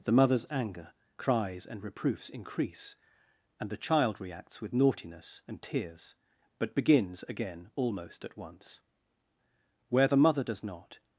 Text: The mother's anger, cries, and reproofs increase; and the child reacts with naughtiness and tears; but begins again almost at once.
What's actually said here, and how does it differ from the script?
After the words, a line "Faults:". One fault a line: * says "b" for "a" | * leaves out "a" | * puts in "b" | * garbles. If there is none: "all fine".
The mother's anger, cries, and reproofs increase; and the child reacts with naughtiness and tears; but begins again almost at once. Where the mother does not
Faults:
* puts in "Where the mother does not"